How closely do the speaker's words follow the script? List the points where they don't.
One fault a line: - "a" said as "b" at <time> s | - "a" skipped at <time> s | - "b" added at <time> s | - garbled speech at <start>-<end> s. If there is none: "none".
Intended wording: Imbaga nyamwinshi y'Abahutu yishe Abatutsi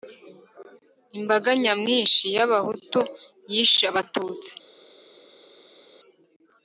none